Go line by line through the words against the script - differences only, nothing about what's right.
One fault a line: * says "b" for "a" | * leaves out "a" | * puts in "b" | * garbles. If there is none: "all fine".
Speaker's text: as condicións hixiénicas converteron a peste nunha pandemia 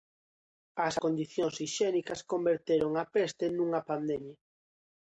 all fine